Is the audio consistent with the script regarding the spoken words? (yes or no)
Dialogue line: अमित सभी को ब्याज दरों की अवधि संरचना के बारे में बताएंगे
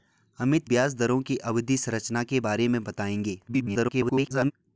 no